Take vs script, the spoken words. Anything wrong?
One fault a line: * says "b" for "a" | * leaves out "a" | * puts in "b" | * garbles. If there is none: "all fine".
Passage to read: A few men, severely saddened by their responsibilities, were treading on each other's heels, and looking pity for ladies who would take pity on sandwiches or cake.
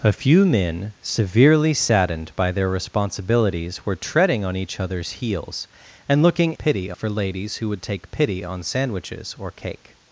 all fine